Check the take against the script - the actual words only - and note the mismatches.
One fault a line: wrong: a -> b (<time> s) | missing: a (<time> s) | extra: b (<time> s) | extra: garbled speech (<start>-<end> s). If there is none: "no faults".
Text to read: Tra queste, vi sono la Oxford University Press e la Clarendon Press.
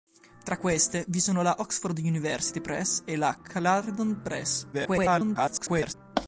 extra: garbled speech (4.7-5.9 s)